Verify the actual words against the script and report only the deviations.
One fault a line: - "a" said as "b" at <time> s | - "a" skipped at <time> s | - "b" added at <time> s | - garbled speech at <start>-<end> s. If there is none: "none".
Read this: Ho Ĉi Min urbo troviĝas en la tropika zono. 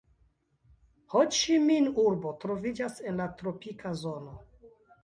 none